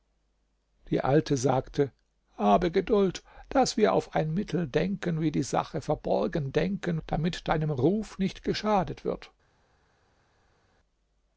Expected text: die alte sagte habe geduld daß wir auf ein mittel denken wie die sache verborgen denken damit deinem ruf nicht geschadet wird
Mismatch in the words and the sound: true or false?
false